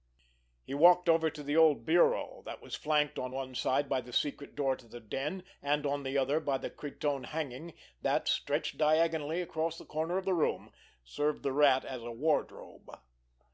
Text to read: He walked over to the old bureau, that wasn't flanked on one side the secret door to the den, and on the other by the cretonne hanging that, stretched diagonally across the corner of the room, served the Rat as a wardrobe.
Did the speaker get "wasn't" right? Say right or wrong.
wrong